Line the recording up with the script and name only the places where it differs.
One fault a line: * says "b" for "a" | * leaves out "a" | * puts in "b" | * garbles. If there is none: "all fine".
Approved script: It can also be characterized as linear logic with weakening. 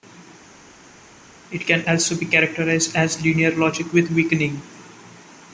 all fine